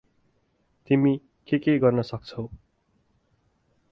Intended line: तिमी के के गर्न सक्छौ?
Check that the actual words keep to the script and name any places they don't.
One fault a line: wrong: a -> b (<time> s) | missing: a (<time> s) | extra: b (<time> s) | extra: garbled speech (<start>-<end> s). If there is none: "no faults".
no faults